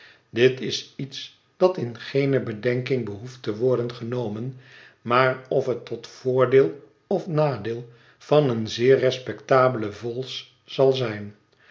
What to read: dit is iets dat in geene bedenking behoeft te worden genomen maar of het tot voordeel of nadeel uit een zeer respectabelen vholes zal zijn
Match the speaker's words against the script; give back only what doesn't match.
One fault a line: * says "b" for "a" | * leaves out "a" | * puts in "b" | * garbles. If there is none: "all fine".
* says "van" for "uit"